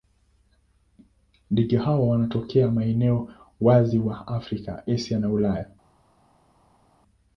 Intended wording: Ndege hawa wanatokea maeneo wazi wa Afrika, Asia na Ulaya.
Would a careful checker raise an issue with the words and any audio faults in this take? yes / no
no